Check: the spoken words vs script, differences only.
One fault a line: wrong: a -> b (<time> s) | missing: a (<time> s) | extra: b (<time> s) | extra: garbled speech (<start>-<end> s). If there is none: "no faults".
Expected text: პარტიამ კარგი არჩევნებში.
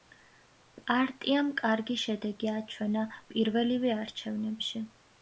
extra: შედეგი აჩვენა პირველივე (2.0 s)